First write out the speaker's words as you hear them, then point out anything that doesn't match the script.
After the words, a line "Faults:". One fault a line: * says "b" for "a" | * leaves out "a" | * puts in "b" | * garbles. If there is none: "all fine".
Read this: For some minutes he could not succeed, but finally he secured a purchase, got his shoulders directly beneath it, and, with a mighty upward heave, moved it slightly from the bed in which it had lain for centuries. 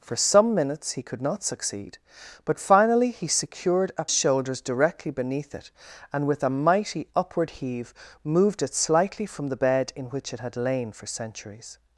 For some minutes he could not succeed, but finally he secured a shoulders directly beneath it, and, with a mighty upward heave, moved it slightly from the bed in which it had lain for centuries.
Faults:
* leaves out "purchase got his"